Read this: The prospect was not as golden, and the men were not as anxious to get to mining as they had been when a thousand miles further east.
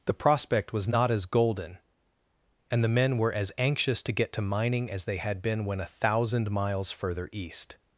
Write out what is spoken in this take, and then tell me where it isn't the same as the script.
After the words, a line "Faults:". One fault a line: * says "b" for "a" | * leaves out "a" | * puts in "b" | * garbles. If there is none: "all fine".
The prospect was not as golden, and the men were as anxious to get to mining as they had been when a thousand miles further east.
Faults:
* leaves out "not"